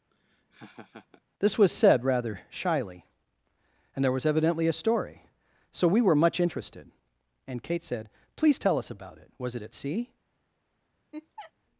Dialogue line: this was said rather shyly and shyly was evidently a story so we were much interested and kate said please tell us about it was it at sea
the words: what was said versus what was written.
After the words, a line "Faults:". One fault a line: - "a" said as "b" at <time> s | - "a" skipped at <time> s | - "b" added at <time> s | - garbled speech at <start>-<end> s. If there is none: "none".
this was said rather shyly and there was evidently a story so we were much interested and kate said please tell us about it was it at sea
Faults:
- "shyly" said as "there" at 4.0 s